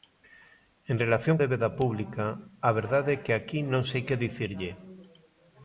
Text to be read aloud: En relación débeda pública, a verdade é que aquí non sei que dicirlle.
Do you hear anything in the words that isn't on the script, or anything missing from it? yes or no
no